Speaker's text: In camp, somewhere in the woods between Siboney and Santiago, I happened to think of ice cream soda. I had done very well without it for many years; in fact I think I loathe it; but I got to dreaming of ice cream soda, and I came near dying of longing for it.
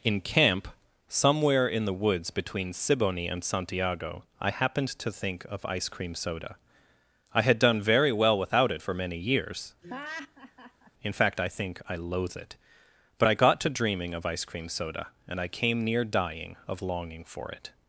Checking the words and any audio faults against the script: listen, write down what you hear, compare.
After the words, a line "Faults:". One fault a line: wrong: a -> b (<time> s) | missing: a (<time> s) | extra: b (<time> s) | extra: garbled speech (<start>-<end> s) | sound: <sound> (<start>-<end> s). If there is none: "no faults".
In camp, somewhere in the woods between Siboney and Santiago, I happened to think of ice cream soda. I had done very well without it for many years; in fact I think I loathe it; but I got to dreaming of ice cream soda, and I came near dying of longing for it.
Faults:
sound: laugh (9.8-10.9 s)